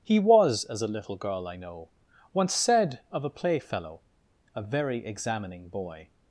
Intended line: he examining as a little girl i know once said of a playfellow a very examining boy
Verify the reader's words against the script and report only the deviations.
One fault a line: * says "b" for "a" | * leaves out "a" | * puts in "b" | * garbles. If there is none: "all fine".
* says "was" for "examining"